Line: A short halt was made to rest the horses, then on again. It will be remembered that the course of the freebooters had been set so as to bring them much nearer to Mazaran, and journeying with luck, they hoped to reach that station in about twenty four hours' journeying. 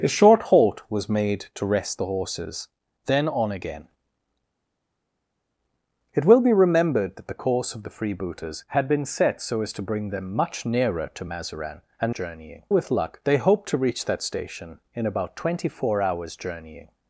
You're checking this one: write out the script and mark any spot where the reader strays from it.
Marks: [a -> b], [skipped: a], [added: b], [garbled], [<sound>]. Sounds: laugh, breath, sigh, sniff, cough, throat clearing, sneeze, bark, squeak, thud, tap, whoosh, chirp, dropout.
A short halt was made to rest the horses, then on again. It will be remembered that the course of the freebooters had been set so as to bring them much nearer to Mazaran, and journeying with luck, they hoped to reach that station in about twenty four hours' journeying.